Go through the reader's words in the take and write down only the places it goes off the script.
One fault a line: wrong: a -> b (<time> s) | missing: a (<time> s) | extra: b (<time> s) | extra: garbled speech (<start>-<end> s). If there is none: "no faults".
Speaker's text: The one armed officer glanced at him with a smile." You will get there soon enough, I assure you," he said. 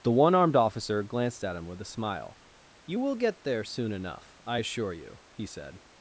no faults